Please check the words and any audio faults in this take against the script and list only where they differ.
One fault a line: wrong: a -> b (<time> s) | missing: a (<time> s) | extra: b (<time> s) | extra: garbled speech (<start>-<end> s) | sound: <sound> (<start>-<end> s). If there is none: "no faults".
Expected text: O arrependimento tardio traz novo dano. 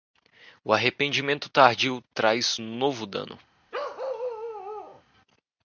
sound: bark (3.7-5.0 s)